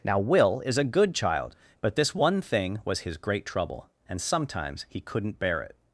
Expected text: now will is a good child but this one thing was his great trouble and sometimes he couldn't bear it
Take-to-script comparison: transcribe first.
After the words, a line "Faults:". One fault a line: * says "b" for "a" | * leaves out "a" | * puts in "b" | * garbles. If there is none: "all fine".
now will is a good child but this one thing was his great trouble and sometimes he couldn't bear it
Faults:
all fine